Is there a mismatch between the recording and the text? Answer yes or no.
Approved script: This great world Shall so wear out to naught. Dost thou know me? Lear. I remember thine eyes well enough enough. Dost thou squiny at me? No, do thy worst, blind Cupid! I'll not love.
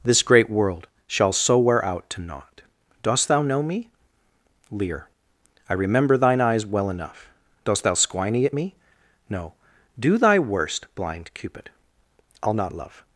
yes